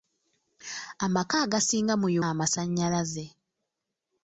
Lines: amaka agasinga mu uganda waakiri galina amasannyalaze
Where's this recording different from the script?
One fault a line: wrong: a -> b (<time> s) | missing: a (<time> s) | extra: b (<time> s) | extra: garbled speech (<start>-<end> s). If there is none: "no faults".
missing: uganda waakiri galina (2.1 s)